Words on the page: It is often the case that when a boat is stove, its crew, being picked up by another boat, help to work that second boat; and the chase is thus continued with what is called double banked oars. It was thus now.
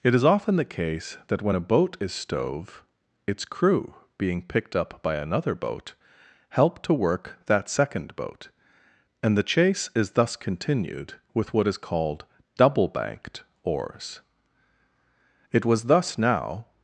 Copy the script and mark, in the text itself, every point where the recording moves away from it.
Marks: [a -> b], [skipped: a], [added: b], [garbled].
It is often the case that when a boat is stove, its crew, being picked up by another boat, help to work that second boat; and the chase is thus continued with what is called double banked oars. It was thus now.